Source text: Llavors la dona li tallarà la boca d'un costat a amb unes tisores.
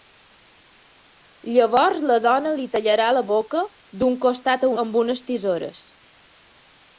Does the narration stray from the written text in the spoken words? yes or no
no